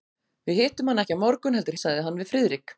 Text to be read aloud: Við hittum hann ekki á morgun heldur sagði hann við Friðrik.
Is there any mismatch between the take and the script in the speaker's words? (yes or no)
no